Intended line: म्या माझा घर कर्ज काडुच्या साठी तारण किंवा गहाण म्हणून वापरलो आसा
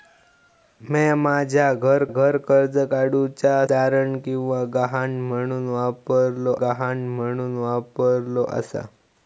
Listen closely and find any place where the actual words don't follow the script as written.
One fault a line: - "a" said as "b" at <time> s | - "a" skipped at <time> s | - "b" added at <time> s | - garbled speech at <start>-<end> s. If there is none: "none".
- "घर" added at 2.1 s
- "साठी" skipped at 3.7 s
- "गहाण म्हणून वापरलो" added at 6.6 s